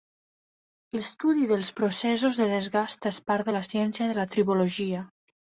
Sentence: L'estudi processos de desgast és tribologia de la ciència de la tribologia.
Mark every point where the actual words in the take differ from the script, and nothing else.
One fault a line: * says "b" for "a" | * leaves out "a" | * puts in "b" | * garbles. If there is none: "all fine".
* puts in "dels"
* says "part" for "tribologia"